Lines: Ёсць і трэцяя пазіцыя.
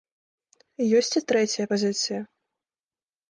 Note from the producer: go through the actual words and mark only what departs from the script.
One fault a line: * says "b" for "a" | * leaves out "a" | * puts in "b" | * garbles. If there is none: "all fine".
all fine